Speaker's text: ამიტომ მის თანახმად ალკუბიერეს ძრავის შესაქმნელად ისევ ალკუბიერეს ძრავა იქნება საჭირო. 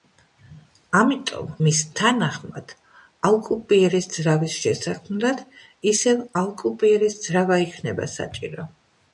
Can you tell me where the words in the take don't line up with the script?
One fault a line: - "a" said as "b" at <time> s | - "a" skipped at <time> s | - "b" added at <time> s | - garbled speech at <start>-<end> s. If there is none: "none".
none